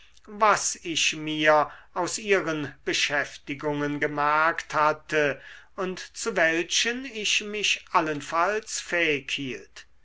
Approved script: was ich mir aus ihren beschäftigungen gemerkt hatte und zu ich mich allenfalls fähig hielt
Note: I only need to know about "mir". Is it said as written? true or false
true